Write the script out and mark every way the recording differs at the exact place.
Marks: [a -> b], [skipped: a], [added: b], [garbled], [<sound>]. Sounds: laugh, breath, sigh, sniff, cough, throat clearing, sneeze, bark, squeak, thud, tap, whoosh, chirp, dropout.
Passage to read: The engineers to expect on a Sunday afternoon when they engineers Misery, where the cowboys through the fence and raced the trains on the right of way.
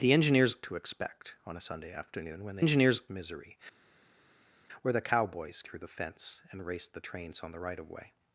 The engineers to expect on a Sunday afternoon when they engineers Misery, where the cowboys through the fence and raced the trains on the right of way.